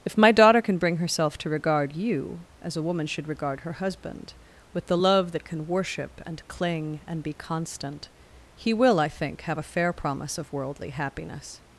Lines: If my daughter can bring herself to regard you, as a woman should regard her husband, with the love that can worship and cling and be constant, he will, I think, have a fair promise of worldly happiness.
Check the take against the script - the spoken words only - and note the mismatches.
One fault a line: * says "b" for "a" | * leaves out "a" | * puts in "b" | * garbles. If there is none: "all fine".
all fine